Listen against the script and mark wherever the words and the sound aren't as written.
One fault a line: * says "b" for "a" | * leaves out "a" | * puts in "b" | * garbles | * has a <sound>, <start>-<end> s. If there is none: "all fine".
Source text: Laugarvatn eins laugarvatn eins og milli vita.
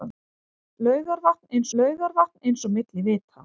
all fine